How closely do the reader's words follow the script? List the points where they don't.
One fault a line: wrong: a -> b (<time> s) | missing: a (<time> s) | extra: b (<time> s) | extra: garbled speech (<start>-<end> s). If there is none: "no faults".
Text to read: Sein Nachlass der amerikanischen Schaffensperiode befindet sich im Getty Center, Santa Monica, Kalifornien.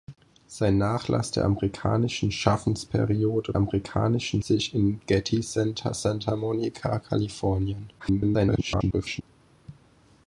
wrong: befindet -> amerikanischen (3.6 s)
extra: garbled speech (8.0-9.2 s)